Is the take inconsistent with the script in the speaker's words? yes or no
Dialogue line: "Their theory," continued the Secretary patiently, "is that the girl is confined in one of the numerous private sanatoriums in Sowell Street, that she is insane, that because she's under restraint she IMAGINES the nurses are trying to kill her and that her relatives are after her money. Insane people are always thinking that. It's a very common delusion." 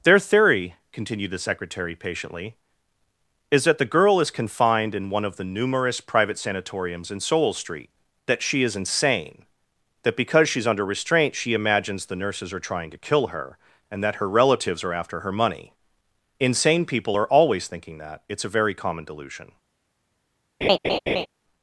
no